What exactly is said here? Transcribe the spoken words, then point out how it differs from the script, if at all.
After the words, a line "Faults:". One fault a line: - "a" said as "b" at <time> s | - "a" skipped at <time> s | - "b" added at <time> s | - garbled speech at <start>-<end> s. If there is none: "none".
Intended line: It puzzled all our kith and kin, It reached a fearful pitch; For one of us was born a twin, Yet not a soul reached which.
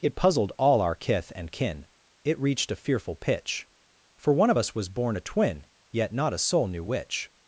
It puzzled all our kith and kin, It reached a fearful pitch; For one of us was born a twin, Yet not a soul knew which.
Faults:
- "reached" said as "knew" at 6.7 s